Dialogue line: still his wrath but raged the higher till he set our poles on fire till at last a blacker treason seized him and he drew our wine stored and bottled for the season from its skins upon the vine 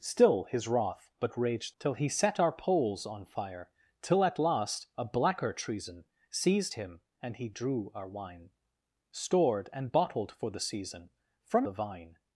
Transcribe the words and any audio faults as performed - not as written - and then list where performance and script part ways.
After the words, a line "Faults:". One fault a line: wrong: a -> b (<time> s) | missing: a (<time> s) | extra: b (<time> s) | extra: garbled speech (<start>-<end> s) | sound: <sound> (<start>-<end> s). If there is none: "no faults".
still his wrath but raged till he set our poles on fire till at last a blacker treason seized him and he drew our wine stored and bottled for the season from the vine
Faults:
missing: the higher (1.8 s)
missing: its skins upon (11.6 s)